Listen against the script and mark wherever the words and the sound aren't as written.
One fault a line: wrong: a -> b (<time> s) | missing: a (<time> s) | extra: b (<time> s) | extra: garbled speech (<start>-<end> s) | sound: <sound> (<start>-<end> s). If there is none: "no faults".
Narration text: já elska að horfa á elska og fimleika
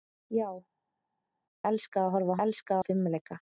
no faults